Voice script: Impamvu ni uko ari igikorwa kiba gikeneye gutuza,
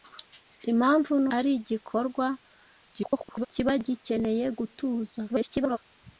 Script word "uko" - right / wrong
wrong